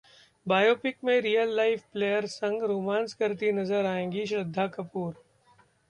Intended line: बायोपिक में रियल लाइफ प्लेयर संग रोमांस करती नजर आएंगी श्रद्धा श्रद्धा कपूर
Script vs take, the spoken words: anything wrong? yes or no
yes